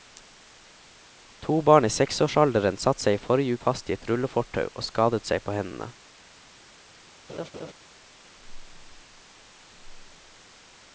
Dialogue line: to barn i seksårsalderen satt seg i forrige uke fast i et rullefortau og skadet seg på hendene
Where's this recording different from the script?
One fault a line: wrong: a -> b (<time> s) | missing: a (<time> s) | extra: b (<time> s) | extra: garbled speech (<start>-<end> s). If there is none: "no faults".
missing: uke (3.6 s)